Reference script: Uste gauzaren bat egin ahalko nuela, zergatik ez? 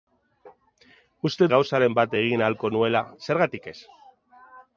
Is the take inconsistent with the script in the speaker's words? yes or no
no